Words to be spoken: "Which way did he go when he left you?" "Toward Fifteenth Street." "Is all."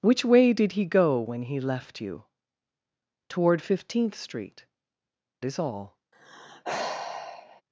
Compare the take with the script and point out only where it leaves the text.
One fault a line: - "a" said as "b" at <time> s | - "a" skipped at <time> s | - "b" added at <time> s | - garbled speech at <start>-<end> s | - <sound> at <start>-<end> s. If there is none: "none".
- sigh at 6.1-7.6 s